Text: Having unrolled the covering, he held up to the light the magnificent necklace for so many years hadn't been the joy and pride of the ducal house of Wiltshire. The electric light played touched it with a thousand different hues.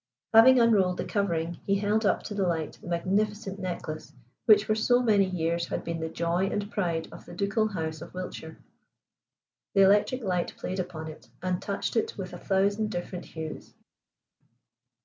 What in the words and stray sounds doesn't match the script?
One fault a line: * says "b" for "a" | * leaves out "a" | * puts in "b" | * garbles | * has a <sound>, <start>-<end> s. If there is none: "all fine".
* puts in "which"
* says "had" for "hadn't"
* puts in "upon it and"